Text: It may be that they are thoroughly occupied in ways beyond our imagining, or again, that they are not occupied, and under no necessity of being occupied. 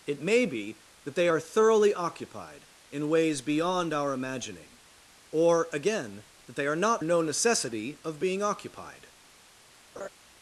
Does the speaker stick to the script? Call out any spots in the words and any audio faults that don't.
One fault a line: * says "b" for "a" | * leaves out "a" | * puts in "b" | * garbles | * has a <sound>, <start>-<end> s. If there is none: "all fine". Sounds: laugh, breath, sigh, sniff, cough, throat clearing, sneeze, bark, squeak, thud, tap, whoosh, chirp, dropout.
* leaves out "occupied and under"
* has a laugh, 10.0-10.1 s